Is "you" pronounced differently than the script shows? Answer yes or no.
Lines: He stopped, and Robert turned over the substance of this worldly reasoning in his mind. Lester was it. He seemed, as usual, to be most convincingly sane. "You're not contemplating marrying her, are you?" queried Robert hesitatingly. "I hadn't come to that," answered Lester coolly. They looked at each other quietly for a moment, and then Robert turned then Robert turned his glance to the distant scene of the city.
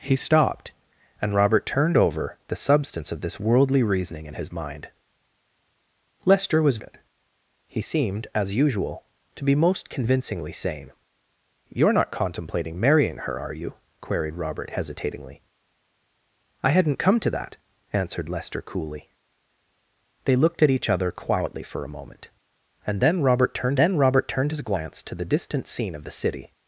no